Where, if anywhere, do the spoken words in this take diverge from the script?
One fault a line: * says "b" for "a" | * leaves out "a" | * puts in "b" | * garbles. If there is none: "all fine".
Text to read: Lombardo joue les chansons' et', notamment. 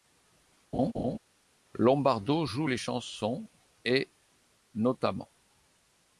all fine